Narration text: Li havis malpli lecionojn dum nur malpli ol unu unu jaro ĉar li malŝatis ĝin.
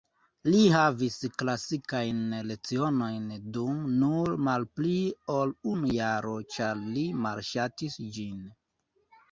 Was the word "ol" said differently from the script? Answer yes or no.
no